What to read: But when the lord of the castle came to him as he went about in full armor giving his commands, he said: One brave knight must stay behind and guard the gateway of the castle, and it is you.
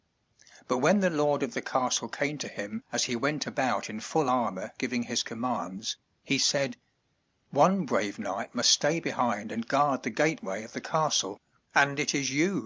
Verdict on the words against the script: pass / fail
pass